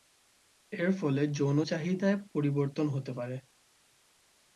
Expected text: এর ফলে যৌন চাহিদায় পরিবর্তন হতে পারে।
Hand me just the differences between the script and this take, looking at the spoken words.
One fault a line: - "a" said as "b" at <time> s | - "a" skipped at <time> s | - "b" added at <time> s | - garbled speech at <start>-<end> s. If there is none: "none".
none